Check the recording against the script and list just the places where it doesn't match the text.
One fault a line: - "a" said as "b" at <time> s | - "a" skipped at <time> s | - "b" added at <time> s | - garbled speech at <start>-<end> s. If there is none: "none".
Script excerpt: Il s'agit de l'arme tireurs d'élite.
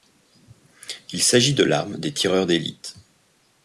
- "des" added at 2.0 s